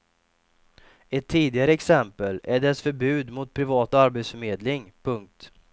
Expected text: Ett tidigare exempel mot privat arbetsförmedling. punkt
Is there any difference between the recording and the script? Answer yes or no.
yes